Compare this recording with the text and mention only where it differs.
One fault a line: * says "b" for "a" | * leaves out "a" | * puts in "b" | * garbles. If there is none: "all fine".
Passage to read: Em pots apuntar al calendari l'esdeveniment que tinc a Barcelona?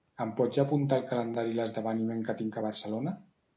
all fine